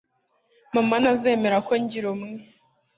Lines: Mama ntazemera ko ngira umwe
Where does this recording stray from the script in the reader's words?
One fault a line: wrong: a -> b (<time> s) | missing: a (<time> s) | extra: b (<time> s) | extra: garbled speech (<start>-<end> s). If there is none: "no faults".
no faults